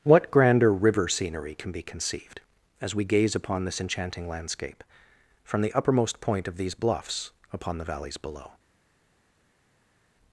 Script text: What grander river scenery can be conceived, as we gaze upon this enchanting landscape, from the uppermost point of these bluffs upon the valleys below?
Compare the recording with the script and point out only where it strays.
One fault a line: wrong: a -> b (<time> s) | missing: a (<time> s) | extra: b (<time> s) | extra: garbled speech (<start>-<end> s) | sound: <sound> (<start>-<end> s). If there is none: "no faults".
no faults